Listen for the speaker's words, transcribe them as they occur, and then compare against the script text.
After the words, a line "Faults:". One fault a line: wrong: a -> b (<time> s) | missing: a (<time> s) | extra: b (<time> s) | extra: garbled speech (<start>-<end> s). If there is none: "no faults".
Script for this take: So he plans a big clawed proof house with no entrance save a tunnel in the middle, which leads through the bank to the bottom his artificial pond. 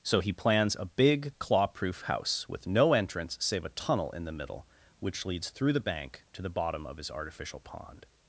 So he plans a big claw proof house with no entrance save a tunnel in the middle, which leads through the bank to the bottom of his artificial pond.
Faults:
wrong: clawed -> claw (1.4 s)
extra: of (6.9 s)